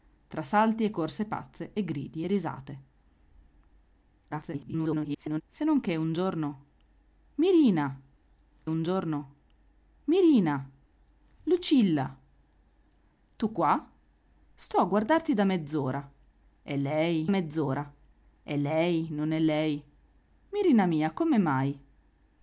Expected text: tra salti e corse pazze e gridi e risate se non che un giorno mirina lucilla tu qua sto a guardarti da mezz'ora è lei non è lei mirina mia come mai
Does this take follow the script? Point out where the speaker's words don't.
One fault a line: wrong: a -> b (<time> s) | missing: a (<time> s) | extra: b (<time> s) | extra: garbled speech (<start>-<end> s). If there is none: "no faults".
extra: garbled speech (4.3-5.4 s)
extra: un giorno mirina (8.7 s)
extra: mezz'ora è lei (17.3 s)